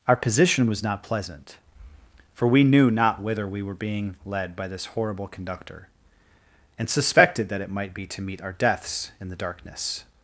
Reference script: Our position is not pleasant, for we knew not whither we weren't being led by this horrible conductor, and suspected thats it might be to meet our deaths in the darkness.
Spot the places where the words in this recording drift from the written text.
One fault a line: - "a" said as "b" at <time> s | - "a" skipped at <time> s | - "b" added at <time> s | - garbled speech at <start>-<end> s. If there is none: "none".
- "is" said as "was" at 0.7 s
- "weren't" said as "were" at 3.6 s
- "thats" said as "that" at 7.5 s